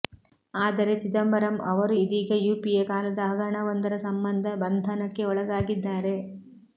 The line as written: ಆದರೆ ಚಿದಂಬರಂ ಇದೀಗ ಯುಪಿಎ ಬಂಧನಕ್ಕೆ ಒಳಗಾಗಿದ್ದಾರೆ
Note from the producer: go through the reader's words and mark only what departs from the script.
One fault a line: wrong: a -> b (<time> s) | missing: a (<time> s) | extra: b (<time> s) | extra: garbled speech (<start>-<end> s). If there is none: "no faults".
extra: ಅವರು (1.7 s)
extra: ಕಾಲದ ಹಗರಣವೊಂದರ ಸಂಬಂಧ (2.9 s)